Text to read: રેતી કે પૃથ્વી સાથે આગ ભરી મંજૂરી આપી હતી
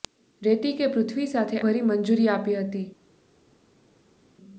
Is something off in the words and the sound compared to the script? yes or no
yes